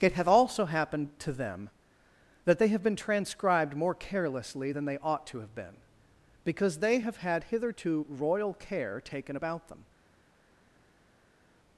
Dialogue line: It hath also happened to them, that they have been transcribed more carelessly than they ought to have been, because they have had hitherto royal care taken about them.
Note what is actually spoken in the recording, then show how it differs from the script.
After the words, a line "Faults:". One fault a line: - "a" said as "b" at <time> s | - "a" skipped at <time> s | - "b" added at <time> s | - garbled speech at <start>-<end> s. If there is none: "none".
It hath also happened to them, that they have been transcribed more carelessly than they ought to have been, because they have had hitherto royal care taken about them.
Faults:
none